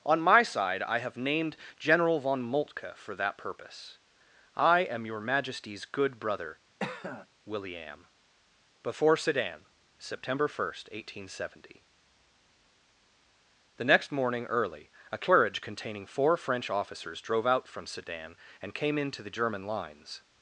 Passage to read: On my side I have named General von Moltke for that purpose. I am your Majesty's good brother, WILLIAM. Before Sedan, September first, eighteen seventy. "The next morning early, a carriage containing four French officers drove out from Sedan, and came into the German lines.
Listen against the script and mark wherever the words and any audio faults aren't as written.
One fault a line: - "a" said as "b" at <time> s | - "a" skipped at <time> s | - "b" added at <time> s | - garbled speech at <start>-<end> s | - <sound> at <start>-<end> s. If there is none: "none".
- cough at 6.8-7.3 s